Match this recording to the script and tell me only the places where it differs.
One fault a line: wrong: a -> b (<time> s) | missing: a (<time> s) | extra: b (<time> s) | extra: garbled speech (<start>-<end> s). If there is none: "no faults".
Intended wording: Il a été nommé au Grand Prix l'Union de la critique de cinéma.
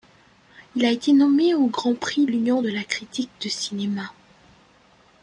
no faults